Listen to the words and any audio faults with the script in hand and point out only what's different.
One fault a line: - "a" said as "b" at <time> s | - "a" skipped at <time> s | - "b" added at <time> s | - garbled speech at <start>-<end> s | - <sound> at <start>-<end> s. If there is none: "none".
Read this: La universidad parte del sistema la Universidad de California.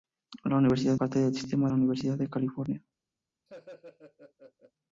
- laugh at 3.5-4.7 s